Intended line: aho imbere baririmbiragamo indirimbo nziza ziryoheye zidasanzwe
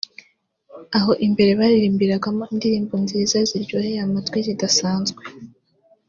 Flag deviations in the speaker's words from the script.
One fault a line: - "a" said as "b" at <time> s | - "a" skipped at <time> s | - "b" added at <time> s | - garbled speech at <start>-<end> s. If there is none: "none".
- "amatwi" added at 4.1 s